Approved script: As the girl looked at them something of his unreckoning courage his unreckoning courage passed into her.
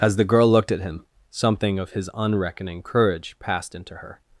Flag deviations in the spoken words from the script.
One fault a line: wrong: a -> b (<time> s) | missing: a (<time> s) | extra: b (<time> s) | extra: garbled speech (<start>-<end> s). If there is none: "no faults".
wrong: them -> him (0.8 s)
missing: his unreckoning courage (3.4 s)